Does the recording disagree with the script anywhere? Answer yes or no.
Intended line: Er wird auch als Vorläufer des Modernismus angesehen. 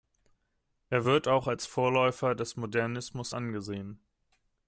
no